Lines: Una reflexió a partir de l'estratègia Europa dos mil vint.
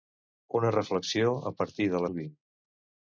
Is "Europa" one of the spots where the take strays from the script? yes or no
yes